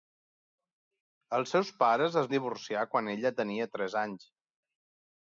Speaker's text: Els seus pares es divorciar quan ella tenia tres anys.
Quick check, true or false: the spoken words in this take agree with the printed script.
true